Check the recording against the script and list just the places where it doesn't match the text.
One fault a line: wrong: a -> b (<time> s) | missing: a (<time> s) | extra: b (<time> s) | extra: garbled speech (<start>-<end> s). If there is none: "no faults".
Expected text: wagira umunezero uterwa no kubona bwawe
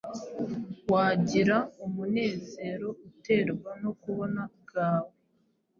no faults